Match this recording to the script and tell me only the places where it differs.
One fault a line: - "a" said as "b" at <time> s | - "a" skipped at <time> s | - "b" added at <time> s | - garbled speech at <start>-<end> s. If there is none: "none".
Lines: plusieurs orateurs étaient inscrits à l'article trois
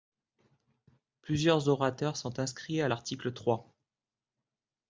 - "étaient" said as "sont" at 2.2 s